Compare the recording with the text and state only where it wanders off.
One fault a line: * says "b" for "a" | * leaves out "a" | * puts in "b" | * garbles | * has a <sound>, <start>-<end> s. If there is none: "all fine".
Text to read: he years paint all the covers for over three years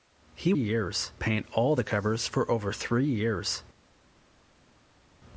all fine